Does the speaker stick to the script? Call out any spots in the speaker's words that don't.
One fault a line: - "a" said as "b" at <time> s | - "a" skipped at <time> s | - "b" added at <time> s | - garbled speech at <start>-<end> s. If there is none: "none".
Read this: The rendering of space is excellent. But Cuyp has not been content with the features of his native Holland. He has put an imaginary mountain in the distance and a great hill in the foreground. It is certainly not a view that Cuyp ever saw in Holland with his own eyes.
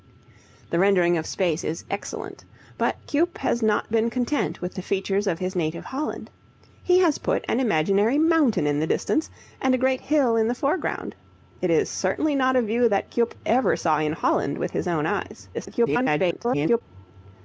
- garbled speech at 15.5-16.8 s